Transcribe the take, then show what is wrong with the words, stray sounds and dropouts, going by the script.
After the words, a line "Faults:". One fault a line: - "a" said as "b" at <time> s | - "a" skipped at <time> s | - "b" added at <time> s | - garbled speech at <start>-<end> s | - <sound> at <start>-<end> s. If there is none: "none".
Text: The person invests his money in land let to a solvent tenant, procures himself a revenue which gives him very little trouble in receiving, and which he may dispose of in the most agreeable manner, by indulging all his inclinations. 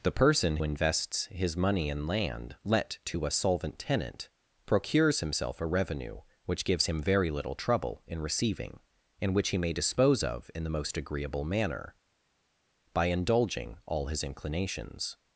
The person invests his money in land let to a solvent tenant, procures himself a revenue which gives him very little trouble in receiving, and which he may dispose of in the most agreeable manner, by indulging all his inclinations.
Faults:
none